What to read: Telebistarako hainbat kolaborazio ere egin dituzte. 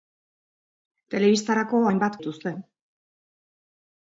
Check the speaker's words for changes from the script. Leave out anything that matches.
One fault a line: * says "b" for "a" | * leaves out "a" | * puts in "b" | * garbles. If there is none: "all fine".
* leaves out "kolaborazio ere egin"